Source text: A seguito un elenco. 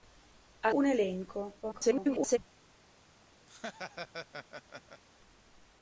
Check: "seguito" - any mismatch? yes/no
yes